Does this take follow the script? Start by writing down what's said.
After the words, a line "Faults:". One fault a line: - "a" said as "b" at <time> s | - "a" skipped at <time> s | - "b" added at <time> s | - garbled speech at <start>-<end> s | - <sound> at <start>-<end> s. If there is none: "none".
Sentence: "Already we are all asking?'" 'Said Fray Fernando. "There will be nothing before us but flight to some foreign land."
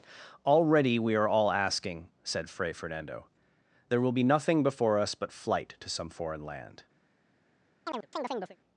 "Already we are all asking?'" 'Said Fray Fernando. "There will be nothing before us but flight to some foreign land."
Faults:
- chirp at 7.9-8.6 s